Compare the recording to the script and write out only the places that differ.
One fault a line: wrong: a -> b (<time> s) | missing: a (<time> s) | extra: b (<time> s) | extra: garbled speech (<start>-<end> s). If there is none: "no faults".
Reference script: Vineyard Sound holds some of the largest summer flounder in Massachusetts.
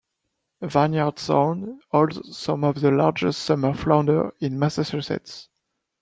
no faults